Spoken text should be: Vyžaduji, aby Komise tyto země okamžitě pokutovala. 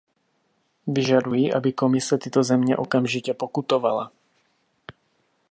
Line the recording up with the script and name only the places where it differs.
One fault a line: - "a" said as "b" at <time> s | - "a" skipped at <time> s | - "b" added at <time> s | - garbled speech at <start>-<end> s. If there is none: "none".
none